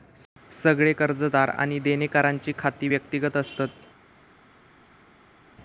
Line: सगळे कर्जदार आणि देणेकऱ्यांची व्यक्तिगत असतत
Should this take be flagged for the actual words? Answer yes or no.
yes